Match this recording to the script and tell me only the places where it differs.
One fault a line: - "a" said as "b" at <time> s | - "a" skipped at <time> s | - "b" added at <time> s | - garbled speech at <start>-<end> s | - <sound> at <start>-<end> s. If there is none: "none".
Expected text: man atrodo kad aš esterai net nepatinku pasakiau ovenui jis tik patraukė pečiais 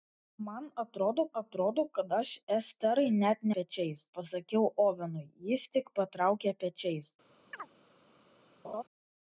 - "atrodo" added at 1.4 s
- "nepatinku" said as "pečiais" at 3.6 s
- chirp at 7.5-7.7 s
- laugh at 8.6-8.8 s